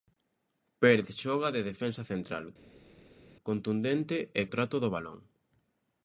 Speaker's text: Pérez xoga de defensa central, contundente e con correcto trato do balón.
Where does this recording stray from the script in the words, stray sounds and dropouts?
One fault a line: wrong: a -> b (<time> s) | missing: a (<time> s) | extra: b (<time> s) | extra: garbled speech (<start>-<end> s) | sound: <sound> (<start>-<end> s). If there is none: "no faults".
missing: con correcto (4.4 s)